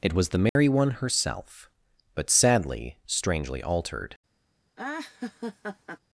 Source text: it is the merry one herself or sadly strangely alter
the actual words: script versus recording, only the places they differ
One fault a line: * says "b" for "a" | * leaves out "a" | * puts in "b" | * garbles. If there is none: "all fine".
* says "was" for "is"
* says "but" for "or"
* says "altered" for "alter"